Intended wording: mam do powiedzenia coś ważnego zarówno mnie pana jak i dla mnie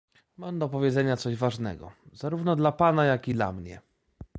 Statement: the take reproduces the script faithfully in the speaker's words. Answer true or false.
false